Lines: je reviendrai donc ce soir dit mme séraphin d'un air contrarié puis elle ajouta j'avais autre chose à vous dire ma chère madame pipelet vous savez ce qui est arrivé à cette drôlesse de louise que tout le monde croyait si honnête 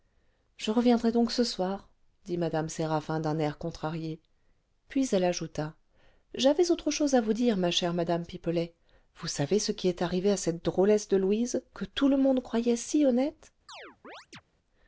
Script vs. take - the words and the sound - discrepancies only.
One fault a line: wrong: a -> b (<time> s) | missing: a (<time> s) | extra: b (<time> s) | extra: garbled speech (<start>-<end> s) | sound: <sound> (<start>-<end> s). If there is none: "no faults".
sound: chirp (13.7-14.4 s)